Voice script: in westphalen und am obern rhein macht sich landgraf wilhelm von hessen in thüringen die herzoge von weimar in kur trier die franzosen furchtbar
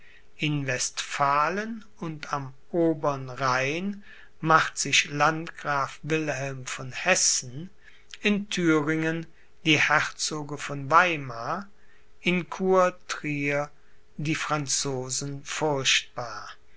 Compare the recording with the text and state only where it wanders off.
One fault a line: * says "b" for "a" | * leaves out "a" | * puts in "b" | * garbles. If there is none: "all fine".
all fine